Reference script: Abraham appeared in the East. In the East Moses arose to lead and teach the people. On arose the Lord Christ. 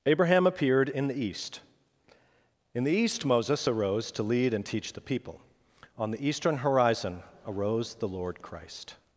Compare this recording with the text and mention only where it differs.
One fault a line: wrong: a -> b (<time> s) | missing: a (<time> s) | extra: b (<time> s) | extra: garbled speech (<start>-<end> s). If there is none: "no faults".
extra: the Eastern horizon (6.1 s)